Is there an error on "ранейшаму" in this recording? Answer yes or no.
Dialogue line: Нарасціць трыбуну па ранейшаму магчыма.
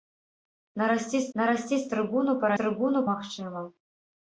yes